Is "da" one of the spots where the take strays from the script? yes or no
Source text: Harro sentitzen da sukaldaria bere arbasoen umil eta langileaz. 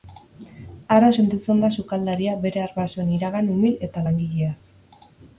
no